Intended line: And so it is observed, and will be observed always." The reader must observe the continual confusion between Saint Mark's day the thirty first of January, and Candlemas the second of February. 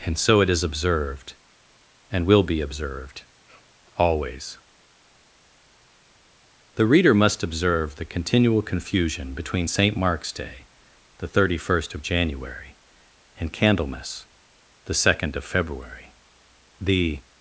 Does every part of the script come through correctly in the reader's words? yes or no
no